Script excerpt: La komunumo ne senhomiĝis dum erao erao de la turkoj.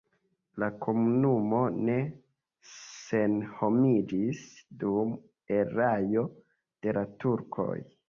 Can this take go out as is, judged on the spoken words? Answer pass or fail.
fail